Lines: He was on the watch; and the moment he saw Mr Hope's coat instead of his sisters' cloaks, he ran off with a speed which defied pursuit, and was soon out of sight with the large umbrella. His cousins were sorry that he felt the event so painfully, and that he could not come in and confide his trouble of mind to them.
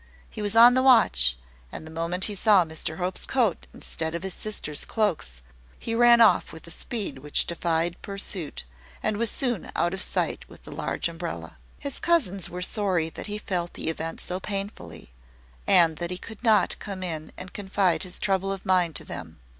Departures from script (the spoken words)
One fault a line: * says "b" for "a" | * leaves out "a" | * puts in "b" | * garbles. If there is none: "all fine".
all fine